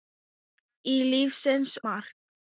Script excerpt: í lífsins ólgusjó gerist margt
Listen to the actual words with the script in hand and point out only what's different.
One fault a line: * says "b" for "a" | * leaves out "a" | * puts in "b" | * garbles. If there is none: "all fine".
* leaves out "ólgusjó gerist"